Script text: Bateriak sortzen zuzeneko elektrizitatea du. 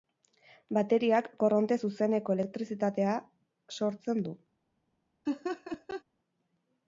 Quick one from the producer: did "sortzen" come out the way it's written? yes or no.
no